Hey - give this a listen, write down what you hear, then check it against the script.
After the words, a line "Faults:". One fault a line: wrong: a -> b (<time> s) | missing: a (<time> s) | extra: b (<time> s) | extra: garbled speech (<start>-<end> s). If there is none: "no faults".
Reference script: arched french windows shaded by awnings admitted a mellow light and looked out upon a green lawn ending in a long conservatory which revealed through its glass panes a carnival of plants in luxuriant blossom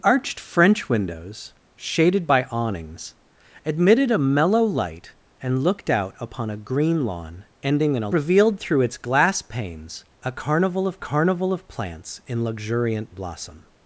arched french windows shaded by awnings admitted a mellow light and looked out upon a green lawn ending in a revealed through its glass panes a carnival of carnival of plants in luxuriant blossom
Faults:
missing: long conservatory which (8.1 s)
extra: carnival of (11.0 s)